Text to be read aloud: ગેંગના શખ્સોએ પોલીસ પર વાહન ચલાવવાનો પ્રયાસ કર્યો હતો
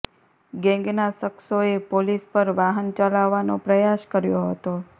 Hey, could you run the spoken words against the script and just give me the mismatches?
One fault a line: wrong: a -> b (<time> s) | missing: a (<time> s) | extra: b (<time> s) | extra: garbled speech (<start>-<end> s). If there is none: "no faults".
no faults